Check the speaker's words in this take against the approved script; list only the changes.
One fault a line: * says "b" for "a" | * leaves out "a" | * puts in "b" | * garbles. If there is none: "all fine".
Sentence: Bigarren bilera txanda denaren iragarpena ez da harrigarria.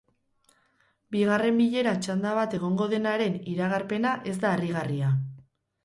* puts in "bat egongo"